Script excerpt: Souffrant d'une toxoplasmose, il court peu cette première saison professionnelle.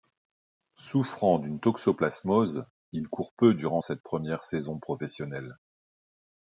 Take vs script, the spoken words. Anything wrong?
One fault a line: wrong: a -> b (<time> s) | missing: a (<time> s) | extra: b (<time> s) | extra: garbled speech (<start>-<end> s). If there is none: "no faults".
extra: durant (3.6 s)